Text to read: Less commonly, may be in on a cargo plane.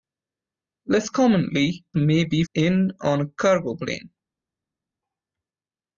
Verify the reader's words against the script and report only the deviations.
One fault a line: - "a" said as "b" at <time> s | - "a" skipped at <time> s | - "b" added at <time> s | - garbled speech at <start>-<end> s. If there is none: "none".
none